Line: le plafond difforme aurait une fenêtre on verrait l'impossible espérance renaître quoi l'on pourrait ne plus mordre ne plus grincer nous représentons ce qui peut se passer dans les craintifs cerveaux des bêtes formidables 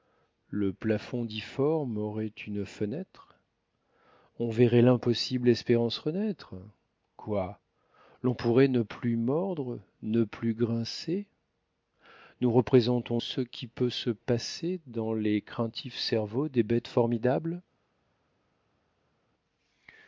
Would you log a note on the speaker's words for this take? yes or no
no